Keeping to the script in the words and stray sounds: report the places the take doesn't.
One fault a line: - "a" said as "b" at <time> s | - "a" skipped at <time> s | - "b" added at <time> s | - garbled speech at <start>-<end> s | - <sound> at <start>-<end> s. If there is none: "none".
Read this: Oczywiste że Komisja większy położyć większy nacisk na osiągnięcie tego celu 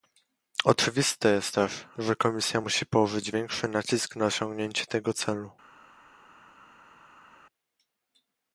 - "jest też" added at 1.3 s
- "większy" said as "musi" at 2.6 s